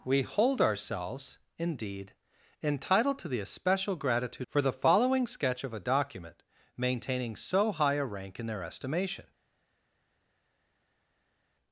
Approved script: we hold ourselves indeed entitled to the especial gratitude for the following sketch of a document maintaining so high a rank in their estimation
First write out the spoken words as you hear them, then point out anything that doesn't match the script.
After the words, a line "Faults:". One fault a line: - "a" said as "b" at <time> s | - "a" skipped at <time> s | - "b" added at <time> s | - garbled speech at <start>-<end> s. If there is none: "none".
we hold ourselves indeed entitled to the especial gratitude for the following sketch of a document maintaining so high a rank in their estimation
Faults:
none